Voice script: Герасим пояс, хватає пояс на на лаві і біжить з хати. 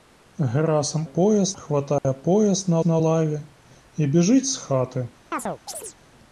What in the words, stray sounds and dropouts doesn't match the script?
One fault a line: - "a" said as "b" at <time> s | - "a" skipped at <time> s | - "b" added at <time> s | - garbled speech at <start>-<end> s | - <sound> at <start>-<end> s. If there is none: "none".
- dropout at 2.0-2.0 s
- chirp at 5.3-6.0 s